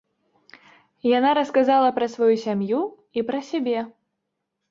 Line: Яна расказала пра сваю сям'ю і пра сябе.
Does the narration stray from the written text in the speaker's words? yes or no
no